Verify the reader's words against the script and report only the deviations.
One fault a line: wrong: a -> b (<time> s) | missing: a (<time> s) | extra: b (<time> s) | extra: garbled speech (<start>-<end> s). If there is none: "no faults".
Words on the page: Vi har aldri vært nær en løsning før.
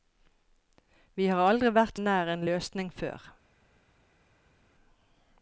no faults